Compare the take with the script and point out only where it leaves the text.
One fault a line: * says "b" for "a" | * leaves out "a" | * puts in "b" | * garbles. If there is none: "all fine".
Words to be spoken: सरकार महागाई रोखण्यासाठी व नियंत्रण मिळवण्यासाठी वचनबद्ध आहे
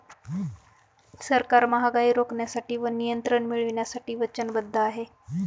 all fine